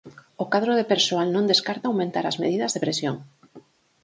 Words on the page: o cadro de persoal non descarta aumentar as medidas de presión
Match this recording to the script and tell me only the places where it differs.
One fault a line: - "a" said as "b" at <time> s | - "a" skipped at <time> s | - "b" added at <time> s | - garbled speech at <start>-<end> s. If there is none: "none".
none